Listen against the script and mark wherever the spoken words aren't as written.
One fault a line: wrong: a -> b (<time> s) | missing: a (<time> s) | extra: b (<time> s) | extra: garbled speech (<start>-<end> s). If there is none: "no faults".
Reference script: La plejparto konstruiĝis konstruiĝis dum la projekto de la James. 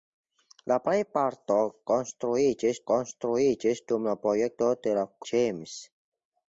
no faults